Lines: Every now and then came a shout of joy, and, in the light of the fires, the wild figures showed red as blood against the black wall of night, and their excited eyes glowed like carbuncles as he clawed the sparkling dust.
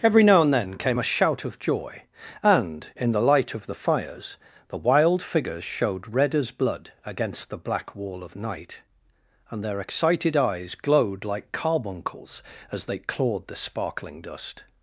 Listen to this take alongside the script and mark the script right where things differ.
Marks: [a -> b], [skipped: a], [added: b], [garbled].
Every now and then came a shout of joy, and, in the light of the fires, the wild figures showed red as blood against the black wall of night, and their excited eyes glowed like carbuncles as [he -> they] clawed the sparkling dust.